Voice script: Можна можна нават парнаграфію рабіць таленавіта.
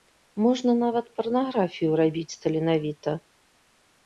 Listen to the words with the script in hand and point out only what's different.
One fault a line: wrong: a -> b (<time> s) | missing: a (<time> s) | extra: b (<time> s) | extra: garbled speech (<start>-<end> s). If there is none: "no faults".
missing: можна (0.7 s)